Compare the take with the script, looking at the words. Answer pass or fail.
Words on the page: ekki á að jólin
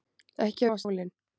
pass